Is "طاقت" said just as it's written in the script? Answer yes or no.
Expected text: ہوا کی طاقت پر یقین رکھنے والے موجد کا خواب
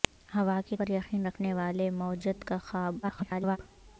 no